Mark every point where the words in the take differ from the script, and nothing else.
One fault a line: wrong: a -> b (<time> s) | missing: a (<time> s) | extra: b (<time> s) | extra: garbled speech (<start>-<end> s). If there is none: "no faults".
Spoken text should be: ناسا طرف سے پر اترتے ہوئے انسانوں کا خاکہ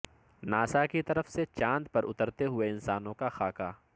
extra: کی (0.8 s)
extra: چاند (1.5 s)